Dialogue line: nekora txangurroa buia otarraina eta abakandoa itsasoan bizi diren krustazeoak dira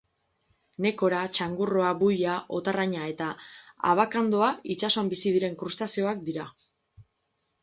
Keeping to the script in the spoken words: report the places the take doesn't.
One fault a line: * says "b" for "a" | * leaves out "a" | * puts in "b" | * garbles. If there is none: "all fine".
all fine